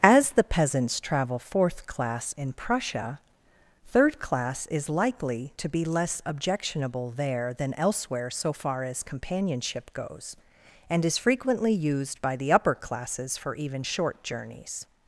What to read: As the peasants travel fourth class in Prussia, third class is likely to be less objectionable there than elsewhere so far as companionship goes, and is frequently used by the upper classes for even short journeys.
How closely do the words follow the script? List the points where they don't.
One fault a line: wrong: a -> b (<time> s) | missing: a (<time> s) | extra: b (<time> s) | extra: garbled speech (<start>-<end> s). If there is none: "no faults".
no faults